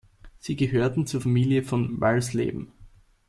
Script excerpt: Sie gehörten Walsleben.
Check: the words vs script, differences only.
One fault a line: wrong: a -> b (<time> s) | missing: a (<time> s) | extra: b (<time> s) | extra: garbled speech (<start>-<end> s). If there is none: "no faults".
extra: zur Familie von (1.1 s)